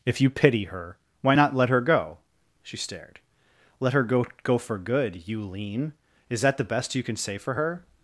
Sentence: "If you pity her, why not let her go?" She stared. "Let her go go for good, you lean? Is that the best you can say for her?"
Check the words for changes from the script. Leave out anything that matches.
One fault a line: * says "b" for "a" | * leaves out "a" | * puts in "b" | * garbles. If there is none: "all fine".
all fine